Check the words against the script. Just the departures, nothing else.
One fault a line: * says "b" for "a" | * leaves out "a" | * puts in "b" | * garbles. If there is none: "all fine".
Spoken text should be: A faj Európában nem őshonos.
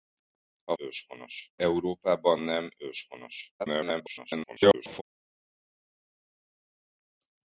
* says "őshonos" for "faj"
* garbles